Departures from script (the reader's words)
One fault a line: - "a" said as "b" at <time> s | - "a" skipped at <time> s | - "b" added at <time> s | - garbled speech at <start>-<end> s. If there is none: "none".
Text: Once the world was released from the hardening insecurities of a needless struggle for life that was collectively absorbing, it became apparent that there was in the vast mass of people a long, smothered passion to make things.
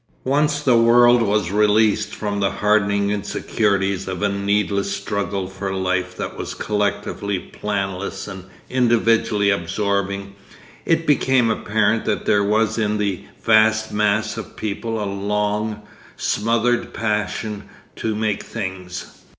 - "planless and individually" added at 7.4 s